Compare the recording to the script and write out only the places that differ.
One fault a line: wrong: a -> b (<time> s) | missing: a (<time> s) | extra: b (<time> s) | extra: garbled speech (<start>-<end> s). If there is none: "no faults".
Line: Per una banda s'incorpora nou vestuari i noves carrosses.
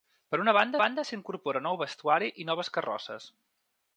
extra: banda (0.8 s)